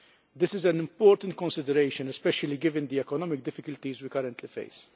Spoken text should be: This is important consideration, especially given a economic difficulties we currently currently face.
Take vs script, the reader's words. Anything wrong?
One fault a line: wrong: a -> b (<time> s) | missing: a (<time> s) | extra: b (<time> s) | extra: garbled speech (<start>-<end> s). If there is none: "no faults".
extra: an (0.7 s)
wrong: a -> the (2.9 s)
missing: currently (4.5 s)